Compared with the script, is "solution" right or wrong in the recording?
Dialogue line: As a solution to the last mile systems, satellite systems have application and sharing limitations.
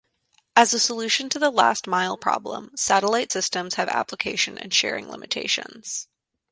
right